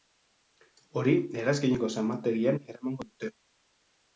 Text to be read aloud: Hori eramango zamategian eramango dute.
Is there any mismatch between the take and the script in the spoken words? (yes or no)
yes